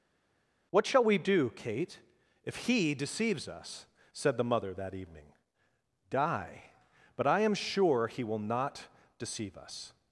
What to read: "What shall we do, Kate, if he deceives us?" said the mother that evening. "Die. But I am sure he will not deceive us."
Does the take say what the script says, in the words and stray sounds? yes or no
yes